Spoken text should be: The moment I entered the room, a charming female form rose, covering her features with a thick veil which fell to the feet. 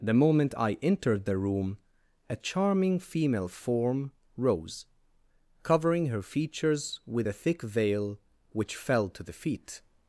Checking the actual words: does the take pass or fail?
pass